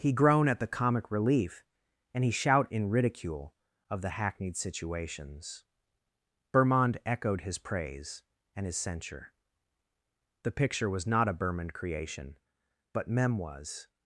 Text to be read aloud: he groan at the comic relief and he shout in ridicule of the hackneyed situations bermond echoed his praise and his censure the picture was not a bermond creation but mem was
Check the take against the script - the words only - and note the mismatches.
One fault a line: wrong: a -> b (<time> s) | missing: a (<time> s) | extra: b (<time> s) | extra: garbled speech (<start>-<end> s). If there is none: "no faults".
no faults